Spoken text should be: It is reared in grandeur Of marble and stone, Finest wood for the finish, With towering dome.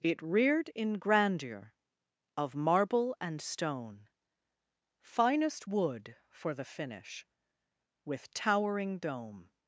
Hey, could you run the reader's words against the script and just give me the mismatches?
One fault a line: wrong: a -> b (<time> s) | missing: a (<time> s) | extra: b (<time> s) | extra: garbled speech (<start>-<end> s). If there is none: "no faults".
missing: is (0.2 s)